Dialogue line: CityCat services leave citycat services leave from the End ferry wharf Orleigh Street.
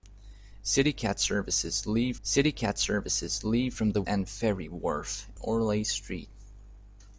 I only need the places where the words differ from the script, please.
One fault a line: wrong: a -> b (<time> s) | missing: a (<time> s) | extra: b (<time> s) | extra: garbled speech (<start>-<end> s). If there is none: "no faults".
no faults